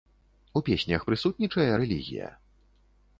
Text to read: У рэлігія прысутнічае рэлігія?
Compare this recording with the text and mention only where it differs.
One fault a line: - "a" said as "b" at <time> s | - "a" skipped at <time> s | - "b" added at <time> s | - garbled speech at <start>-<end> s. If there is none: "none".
- "рэлігія" said as "песнях" at 0.7 s